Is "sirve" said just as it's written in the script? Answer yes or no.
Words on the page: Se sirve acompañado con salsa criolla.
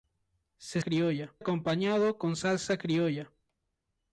no